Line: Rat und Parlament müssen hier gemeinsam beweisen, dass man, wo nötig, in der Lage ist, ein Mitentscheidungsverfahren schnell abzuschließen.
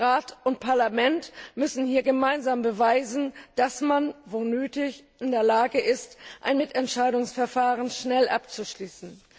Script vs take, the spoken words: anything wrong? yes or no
no